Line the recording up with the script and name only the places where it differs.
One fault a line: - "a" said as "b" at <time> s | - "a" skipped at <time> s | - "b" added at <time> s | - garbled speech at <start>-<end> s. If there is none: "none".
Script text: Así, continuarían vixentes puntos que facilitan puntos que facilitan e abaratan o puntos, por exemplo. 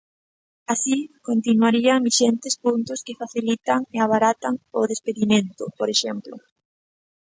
- "puntos que facilitan" skipped at 3.8 s
- "puntos" said as "despedimento" at 4.9 s